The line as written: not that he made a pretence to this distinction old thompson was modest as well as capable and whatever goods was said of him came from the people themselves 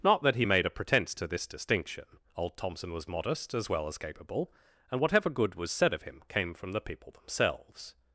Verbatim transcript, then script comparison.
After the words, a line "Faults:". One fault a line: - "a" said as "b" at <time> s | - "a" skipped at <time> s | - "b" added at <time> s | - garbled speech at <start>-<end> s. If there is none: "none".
not that he made a pretence to this distinction old thompson was modest as well as capable and whatever good was said of him came from the people themselves
Faults:
- "goods" said as "good" at 5.3 s